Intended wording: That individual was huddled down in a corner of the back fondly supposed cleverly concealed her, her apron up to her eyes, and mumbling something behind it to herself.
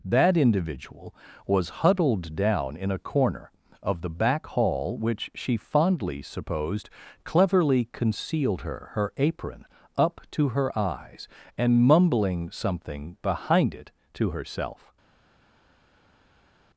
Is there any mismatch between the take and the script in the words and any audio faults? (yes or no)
yes